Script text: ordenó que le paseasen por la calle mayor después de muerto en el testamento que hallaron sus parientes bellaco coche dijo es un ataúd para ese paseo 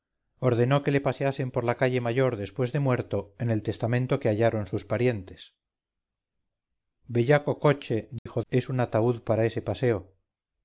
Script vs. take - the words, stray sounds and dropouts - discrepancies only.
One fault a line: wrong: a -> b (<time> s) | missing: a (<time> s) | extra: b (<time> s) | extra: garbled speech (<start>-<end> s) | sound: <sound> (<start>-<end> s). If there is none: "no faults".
sound: dropout (8.2-8.3 s)